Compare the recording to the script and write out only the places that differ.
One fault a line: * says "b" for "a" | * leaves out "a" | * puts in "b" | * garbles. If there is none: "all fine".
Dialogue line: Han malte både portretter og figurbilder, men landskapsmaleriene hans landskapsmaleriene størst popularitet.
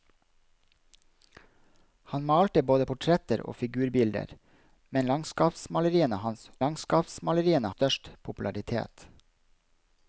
all fine